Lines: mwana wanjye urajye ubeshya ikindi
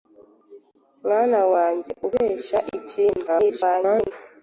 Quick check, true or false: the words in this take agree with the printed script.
false